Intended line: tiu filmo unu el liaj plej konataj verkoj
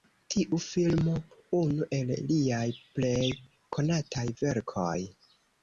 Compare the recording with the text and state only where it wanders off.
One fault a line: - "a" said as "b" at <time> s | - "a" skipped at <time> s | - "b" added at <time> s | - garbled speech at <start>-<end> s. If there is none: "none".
none